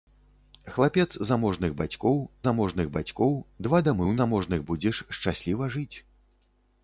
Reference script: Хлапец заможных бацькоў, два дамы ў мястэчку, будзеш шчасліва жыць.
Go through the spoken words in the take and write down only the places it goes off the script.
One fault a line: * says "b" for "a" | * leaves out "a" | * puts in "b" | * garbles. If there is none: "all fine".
* puts in "заможных бацькоў"
* says "заможных" for "мястэчку"